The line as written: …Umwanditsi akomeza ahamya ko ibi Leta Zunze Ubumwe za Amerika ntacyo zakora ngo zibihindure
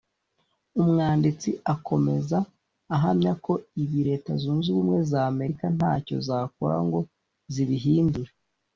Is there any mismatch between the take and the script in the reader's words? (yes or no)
no